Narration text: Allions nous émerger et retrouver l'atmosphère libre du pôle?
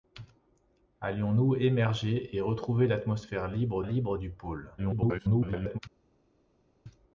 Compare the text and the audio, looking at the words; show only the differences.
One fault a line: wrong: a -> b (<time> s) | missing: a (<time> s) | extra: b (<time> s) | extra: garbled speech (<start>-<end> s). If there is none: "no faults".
extra: libre (3.8 s)
extra: garbled speech (4.8-5.8 s)